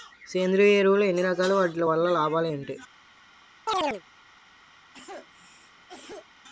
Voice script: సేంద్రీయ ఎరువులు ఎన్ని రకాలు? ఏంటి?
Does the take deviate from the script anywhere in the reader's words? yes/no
yes